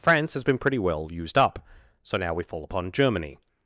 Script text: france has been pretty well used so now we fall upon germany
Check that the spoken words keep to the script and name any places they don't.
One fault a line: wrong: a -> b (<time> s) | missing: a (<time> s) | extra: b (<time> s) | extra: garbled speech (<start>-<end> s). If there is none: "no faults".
extra: up (1.4 s)